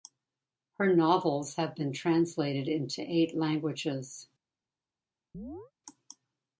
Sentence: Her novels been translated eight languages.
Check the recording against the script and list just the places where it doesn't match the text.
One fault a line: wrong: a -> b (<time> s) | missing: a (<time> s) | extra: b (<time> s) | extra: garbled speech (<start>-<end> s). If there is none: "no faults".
extra: have (1.6 s)
extra: into (2.7 s)